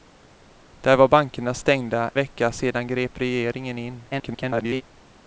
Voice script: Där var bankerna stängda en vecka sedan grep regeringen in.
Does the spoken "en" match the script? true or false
false